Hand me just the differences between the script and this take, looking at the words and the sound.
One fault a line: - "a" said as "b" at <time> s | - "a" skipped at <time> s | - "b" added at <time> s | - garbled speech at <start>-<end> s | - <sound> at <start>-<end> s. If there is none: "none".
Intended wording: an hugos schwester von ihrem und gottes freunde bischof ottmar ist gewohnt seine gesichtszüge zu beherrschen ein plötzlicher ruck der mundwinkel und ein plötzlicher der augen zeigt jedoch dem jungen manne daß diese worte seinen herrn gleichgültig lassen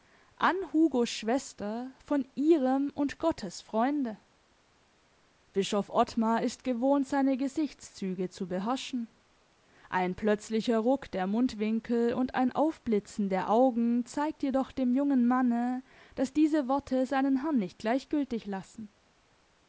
- "plötzlicher" said as "aufblitzen" at 12.5 s
- "nicht" added at 17.6 s